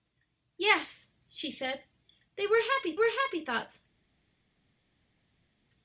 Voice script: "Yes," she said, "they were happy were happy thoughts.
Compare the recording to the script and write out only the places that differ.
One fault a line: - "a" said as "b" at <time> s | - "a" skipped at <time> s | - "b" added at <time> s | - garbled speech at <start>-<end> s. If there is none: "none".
none